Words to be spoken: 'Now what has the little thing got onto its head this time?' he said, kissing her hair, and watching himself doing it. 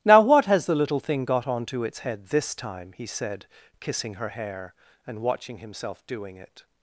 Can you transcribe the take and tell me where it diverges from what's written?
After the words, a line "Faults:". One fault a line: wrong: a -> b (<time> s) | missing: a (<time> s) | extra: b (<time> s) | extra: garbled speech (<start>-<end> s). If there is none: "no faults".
'Now what has the little thing got onto its head this time?' he said, kissing her hair, and watching himself doing it.
Faults:
no faults